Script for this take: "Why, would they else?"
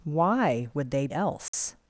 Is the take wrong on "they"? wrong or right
right